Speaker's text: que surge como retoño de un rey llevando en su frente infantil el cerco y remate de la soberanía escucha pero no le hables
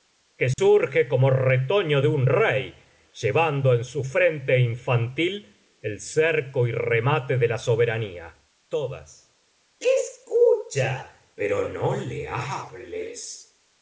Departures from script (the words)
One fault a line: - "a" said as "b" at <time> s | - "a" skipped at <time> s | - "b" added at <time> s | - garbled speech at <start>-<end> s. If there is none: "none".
none